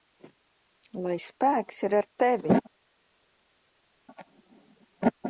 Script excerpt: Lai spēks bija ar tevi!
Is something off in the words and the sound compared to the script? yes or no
yes